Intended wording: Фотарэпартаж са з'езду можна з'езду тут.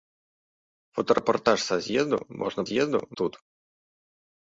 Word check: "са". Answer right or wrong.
right